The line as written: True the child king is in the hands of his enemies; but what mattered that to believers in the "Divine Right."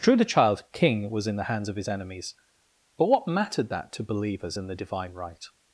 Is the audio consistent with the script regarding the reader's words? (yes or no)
no